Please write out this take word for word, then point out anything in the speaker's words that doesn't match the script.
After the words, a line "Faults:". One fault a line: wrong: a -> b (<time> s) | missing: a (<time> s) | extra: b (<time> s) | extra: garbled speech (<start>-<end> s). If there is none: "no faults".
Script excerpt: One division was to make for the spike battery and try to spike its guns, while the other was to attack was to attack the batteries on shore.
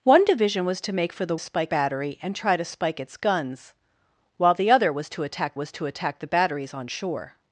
One division was to make for the spike battery and try to spike its guns, while the other was to attack was to attack the batteries on shore.
Faults:
no faults